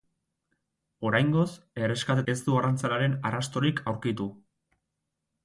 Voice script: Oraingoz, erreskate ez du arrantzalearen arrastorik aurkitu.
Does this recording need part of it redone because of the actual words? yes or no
no